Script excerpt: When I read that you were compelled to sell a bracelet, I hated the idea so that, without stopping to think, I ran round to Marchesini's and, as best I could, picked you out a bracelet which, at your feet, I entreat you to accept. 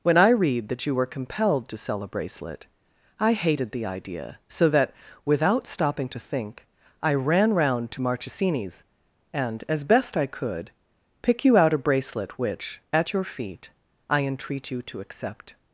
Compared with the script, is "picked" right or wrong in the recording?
wrong